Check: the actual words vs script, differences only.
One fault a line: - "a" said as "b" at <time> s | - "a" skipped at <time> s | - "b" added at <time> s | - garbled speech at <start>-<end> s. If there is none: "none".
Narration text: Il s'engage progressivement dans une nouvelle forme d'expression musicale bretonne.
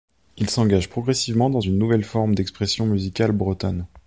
none